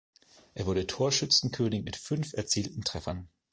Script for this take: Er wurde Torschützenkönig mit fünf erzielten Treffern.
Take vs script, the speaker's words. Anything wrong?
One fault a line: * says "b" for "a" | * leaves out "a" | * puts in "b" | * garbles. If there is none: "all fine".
all fine